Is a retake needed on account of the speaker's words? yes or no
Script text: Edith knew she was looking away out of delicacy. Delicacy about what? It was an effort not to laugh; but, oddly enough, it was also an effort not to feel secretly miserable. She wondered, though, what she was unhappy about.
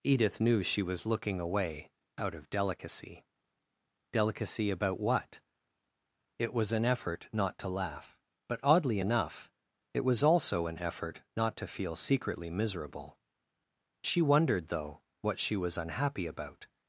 no